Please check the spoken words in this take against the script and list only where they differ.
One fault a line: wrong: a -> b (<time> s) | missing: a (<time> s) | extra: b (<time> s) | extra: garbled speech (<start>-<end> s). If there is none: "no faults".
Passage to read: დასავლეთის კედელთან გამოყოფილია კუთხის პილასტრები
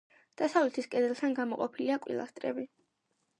missing: კუთხის (2.0 s)